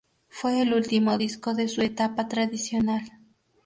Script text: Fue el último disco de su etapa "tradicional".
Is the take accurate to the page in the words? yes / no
yes